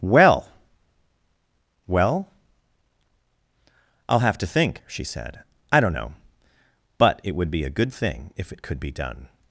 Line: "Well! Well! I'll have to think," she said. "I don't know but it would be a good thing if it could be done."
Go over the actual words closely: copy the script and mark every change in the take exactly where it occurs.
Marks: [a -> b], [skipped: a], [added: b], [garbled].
"Well! Well! I'll have to think," she said. "I don't know but it would be a good thing if it could be done."